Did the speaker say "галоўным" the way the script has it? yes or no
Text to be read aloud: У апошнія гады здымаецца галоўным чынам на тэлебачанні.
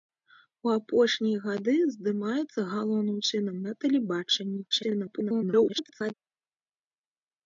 yes